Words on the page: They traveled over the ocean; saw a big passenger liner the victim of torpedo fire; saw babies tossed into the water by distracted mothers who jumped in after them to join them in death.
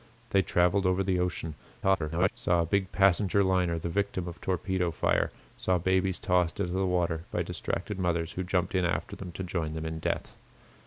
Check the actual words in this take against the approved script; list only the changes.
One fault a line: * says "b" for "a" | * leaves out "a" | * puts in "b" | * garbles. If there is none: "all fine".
* garbles